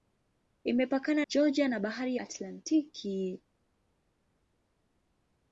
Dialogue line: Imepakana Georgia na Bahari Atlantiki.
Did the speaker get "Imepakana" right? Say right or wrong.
right